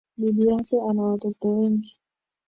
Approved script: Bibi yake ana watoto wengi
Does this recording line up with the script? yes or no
yes